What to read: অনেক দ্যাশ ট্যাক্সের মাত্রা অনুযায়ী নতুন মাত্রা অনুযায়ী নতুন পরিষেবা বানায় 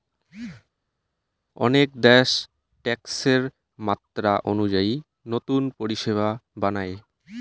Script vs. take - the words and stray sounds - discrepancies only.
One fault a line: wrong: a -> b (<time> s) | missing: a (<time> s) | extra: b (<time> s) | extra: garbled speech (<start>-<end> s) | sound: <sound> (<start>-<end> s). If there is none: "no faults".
missing: মাত্রা অনুযায়ী নতুন (5.6 s)